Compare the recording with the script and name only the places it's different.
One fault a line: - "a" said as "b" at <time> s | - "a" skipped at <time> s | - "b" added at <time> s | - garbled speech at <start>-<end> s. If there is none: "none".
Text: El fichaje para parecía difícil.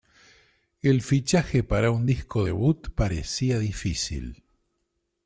- "un disco debut" added at 1.9 s